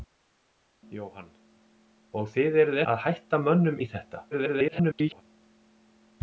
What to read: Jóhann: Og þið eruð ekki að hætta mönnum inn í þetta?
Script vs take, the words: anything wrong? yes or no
yes